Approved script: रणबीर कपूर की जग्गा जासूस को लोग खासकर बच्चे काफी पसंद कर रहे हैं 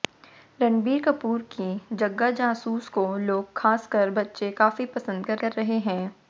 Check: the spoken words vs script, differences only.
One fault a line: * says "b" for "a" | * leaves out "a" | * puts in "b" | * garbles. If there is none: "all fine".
* puts in "कर"